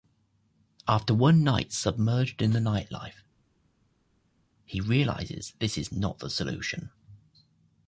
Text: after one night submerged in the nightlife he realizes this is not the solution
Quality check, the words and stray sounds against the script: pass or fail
pass